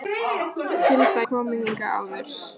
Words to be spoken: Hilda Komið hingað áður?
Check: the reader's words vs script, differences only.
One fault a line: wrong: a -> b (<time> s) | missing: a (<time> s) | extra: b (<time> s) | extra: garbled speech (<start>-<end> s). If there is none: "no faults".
no faults